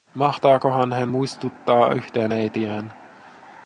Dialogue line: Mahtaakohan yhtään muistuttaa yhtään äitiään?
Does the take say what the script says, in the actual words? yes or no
no